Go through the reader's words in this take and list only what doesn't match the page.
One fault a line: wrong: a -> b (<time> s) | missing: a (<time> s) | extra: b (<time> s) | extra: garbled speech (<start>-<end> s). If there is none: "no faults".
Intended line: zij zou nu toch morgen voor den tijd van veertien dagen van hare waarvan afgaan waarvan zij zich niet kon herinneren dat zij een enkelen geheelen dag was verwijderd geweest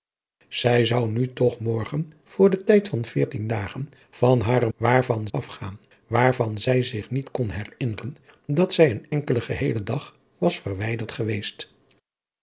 no faults